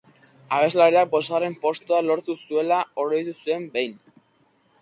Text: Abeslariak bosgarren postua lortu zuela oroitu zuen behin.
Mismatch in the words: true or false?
false